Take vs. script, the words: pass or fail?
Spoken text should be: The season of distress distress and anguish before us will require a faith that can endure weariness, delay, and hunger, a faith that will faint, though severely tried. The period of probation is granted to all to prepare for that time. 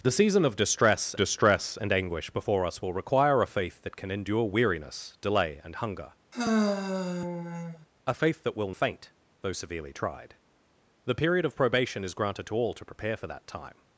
pass